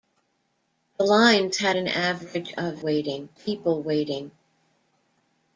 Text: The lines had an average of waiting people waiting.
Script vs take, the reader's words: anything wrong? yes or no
no